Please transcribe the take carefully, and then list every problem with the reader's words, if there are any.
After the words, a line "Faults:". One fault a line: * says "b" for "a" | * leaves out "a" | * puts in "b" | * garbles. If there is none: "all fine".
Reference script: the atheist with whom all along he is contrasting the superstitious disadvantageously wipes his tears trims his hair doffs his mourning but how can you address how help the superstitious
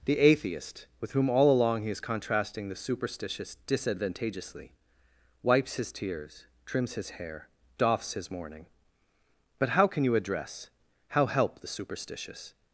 the atheist with whom all along he is contrasting the superstitious disadvantageously wipes his tears trims his hair doffs his mourning but how can you address how help the superstitious
Faults:
all fine